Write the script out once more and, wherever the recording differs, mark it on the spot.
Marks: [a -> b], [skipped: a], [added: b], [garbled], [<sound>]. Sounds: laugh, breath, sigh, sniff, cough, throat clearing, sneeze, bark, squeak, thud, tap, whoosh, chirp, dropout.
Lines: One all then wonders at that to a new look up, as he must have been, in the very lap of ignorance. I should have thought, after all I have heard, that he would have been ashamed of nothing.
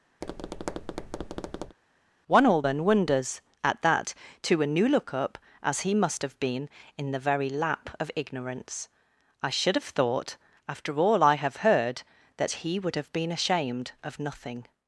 [tap] One all then wonders at that to a new look up, as he must have been, in the very lap of ignorance. I should have thought, after all I have heard, that he would have been ashamed of nothing.